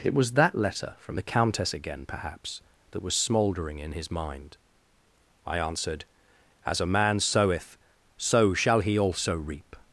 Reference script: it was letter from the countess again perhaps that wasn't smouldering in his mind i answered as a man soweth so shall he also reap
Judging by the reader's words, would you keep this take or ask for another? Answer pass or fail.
fail